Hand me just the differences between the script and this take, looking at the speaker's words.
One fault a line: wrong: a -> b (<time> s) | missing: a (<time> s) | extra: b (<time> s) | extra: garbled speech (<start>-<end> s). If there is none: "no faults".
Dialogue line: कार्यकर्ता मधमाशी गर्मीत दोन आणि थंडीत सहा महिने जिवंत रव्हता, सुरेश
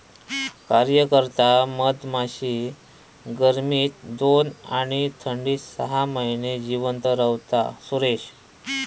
no faults